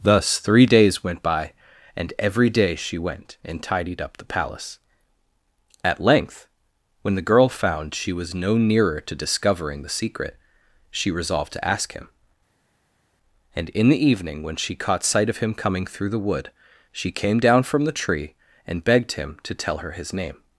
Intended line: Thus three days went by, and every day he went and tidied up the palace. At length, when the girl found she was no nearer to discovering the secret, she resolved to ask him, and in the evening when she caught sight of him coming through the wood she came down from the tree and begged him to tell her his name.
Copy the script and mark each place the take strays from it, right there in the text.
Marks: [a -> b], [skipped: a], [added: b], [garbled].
Thus three days went by, and every day [he -> she] went and tidied up the palace. At length, when the girl found she was no nearer to discovering the secret, she resolved to ask him, and in the evening when she caught sight of him coming through the wood she came down from the tree and begged him to tell her his name.